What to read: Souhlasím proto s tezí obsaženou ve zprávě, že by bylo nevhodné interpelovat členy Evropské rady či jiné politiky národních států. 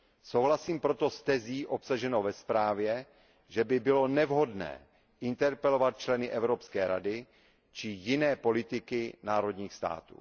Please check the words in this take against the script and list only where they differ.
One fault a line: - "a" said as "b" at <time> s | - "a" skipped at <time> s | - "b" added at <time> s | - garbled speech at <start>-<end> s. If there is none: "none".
none